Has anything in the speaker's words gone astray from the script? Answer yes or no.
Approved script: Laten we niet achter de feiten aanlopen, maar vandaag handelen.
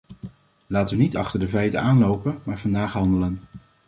no